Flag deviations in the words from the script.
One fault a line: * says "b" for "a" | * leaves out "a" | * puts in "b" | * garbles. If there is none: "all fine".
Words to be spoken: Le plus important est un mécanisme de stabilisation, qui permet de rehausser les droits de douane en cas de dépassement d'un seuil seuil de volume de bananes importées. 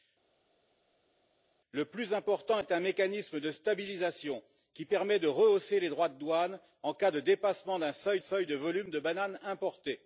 all fine